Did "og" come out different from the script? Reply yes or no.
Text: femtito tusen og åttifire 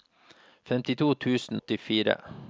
yes